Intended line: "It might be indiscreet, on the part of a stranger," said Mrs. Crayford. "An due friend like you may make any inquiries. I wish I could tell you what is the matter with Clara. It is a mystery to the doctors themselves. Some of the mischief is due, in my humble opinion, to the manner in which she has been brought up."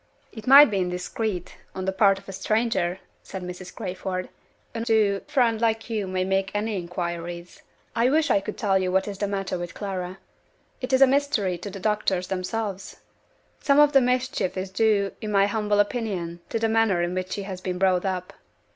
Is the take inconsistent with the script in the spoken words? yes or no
no